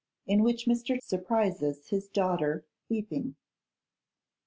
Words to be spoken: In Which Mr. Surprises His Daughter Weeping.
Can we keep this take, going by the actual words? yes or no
yes